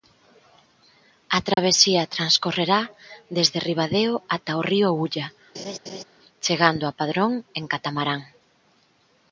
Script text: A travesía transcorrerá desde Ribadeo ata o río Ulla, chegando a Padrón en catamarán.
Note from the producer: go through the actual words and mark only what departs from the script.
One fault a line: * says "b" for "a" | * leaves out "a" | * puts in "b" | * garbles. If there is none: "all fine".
all fine